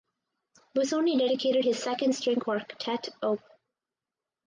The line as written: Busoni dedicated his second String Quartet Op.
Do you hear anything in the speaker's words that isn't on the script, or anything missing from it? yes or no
no